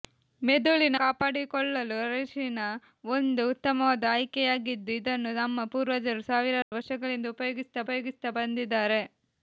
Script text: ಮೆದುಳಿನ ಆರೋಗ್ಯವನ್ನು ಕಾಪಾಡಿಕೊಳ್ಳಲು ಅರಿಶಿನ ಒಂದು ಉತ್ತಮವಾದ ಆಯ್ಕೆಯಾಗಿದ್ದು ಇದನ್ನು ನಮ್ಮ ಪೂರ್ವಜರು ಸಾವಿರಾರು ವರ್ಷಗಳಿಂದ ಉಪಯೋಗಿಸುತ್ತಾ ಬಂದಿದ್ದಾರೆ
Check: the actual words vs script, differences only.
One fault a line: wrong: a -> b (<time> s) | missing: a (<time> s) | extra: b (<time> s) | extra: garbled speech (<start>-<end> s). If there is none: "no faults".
missing: ಆರೋಗ್ಯವನ್ನು (0.9 s)
extra: ಉಪಯೋಗಿಸುತ್ತಾ (7.8 s)